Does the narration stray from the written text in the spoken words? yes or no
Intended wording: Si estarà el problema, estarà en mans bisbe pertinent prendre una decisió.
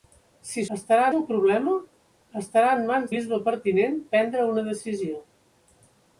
no